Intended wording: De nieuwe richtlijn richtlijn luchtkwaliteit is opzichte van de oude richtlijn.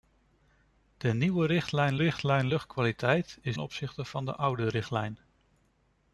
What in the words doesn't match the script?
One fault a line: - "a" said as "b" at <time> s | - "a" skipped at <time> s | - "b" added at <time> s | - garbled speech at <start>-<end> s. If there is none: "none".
none